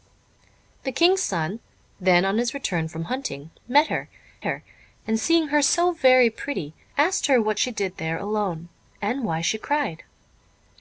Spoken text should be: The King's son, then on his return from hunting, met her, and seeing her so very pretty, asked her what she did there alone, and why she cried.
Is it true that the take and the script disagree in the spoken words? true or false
true